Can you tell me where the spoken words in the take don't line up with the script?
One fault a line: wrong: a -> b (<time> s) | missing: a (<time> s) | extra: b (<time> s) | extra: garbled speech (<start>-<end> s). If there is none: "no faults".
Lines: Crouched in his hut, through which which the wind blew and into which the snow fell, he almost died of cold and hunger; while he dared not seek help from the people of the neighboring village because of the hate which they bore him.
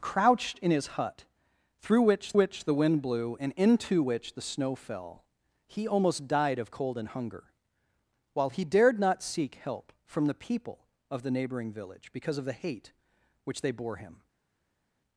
no faults